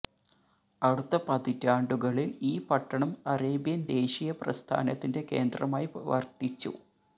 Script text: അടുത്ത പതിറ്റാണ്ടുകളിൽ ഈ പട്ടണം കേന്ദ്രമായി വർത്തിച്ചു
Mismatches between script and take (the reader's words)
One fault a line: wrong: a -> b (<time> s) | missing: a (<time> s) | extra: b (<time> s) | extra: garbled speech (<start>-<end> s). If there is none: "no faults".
extra: അറേബ്യൻ ദേശീയ പ്രസ്ഥാനത്തിന്റെ (3.3 s)